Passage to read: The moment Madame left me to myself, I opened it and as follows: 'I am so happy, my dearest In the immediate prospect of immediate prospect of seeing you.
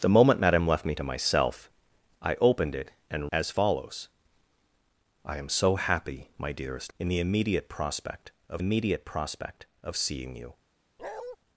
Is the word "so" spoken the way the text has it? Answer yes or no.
yes